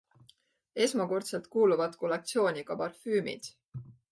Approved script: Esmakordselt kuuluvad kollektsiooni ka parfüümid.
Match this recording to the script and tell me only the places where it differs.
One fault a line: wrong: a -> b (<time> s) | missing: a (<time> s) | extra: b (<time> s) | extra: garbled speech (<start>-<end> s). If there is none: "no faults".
no faults